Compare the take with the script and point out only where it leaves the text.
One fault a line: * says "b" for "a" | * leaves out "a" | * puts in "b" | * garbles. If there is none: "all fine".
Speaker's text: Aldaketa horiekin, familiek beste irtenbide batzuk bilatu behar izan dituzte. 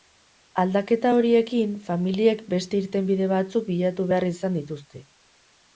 all fine